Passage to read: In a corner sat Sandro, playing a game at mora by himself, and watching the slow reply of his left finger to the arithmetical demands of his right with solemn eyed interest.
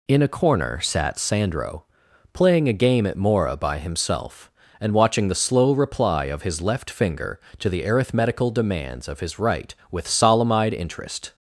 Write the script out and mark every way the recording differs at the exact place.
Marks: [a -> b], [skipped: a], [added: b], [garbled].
In a corner sat Sandro, playing a game at mora by himself, and watching the slow reply of his left finger to the arithmetical demands of his right with solemn eyed interest.